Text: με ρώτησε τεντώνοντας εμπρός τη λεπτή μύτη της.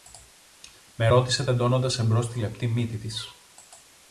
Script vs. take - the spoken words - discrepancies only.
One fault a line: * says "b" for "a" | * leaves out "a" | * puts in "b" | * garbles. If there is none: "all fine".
all fine